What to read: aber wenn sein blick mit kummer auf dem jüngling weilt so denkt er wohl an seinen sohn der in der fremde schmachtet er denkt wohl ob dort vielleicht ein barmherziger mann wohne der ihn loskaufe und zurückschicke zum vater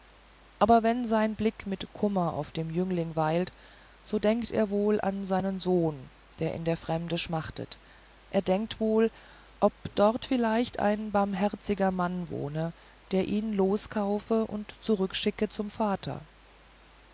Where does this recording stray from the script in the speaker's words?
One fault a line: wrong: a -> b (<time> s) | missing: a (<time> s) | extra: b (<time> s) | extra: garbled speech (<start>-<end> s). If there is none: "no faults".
no faults